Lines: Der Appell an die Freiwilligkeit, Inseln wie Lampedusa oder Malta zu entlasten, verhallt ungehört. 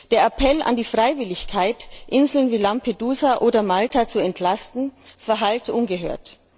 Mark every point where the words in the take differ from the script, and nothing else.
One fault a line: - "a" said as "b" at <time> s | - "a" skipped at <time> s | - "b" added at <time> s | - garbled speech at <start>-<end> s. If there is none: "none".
none